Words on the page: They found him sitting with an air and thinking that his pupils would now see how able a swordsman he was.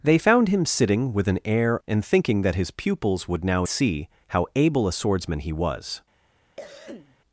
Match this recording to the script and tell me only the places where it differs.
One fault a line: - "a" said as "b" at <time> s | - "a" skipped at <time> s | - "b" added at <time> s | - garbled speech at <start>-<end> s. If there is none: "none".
none